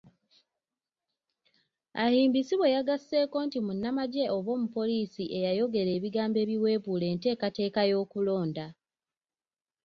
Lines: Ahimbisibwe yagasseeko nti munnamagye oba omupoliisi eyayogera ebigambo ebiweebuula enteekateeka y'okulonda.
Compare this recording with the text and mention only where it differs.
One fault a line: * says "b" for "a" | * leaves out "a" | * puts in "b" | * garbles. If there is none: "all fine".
all fine